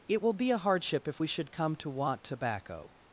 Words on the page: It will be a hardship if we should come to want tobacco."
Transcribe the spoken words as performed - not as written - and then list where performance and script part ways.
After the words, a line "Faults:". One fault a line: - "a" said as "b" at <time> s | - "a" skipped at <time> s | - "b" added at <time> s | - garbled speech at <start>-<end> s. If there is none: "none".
It will be a hardship if we should come to want tobacco."
Faults:
none